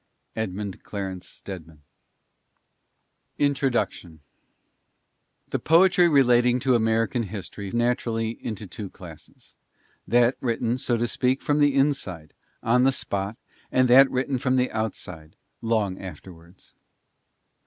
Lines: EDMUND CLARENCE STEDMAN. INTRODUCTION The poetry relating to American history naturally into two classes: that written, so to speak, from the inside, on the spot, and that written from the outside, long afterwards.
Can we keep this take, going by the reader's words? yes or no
yes